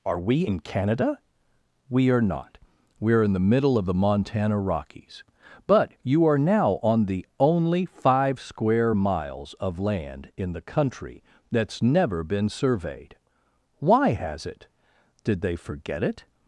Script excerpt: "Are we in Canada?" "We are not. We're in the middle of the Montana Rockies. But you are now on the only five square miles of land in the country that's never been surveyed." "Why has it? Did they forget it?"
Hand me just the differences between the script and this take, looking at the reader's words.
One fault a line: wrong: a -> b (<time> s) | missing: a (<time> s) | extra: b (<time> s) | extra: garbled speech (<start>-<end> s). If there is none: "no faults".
no faults